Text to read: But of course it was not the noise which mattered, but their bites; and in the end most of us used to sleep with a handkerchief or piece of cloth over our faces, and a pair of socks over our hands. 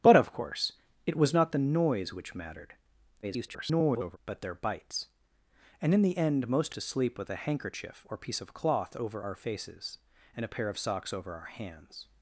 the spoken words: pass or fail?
fail